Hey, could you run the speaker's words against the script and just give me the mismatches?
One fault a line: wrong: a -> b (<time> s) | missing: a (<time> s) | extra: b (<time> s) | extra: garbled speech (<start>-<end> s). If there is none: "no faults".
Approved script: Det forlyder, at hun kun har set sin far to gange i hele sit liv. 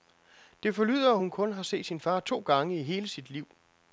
no faults